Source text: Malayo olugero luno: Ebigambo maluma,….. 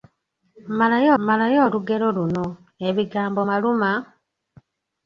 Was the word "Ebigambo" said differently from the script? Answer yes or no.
no